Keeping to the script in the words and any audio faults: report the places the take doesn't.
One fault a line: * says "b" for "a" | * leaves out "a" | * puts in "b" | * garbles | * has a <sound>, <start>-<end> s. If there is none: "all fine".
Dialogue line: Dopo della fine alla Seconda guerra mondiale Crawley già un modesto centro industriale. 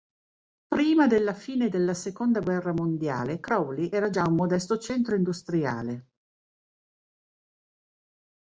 * says "Prima" for "Dopo"
* says "della" for "alla"
* puts in "era"